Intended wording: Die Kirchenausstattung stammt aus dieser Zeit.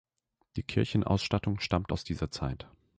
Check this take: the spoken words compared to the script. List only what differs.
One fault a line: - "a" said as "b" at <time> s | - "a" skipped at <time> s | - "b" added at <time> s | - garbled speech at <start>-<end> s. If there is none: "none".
none